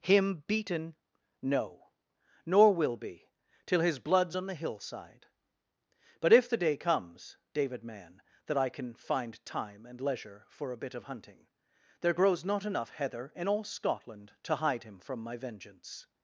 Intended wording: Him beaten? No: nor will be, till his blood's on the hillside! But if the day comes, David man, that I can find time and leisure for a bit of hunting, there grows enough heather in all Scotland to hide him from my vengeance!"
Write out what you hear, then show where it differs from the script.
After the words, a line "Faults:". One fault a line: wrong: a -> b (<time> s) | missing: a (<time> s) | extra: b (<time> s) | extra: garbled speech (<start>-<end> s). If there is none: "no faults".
Him beaten? No: nor will be, till his blood's on the hillside! But if the day comes, David man, that I can find time and leisure for a bit of hunting, there grows not enough heather in all Scotland to hide him from my vengeance!"
Faults:
extra: not (12.5 s)